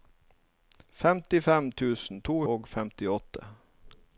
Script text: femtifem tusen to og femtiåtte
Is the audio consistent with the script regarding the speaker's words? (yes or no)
yes